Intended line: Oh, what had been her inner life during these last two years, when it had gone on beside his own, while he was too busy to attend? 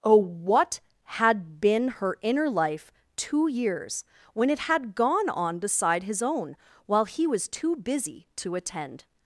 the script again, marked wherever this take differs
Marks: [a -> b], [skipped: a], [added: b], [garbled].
Oh, what had been her inner life [skipped: during these last] two years, when it had gone on beside his own, while he was too busy to attend?